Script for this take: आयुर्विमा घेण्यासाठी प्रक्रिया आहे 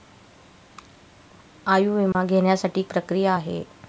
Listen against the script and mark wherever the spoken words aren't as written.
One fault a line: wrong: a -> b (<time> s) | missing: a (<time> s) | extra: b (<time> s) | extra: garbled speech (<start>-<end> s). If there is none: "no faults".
no faults